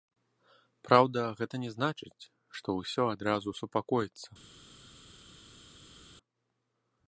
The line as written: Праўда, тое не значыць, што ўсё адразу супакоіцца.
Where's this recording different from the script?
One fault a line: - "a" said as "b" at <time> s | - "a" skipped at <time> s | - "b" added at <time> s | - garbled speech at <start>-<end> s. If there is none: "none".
- "тое" said as "гэта" at 1.4 s